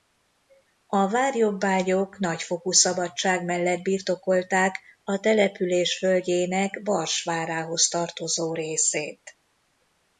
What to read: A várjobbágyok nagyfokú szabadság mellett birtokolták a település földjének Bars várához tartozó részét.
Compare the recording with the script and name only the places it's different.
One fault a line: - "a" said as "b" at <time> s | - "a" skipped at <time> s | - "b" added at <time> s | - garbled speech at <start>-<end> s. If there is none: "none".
none